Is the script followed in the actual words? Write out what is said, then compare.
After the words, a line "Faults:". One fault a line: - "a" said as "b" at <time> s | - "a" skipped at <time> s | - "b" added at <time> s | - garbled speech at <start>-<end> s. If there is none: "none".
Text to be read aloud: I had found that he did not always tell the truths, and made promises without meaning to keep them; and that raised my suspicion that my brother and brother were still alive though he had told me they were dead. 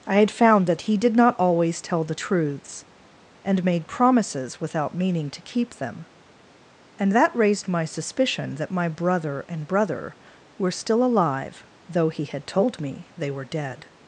I had found that he did not always tell the truths, and made promises without meaning to keep them; and that raised my suspicion that my brother and brother were still alive though he had told me they were dead.
Faults:
none